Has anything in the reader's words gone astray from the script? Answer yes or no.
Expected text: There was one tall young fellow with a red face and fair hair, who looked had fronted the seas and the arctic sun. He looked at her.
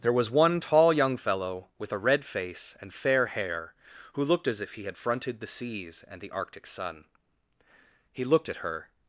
yes